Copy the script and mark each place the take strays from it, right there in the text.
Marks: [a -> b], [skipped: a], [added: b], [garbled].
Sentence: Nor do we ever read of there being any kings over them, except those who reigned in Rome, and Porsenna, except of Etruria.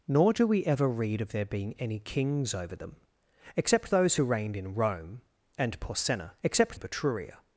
Nor do we ever read of there being any kings over them, except those who reigned in Rome, and Porsenna, except of Etruria.